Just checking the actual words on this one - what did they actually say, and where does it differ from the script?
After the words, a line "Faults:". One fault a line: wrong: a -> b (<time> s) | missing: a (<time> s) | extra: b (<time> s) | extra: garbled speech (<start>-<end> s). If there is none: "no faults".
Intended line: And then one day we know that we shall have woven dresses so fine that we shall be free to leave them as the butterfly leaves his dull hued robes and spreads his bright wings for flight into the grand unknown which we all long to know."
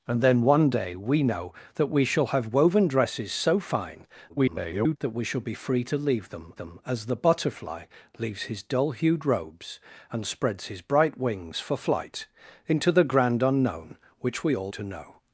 And then one day we know that we shall have woven dresses so fine [garbled] that we shall be free to leave them them as the butterfly leaves his dull hued robes and spreads his bright wings for flight into the grand unknown which we all to know."
Faults:
extra: garbled speech (4.3-5.0 s)
extra: them (6.6 s)
missing: long (14.7 s)